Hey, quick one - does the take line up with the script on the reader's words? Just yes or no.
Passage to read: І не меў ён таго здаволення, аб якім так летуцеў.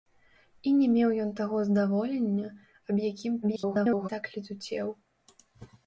no